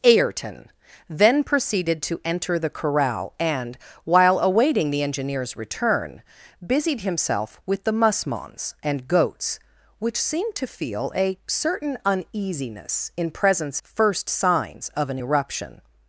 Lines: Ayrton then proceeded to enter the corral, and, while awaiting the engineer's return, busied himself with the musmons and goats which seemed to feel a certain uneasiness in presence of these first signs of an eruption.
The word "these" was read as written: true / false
false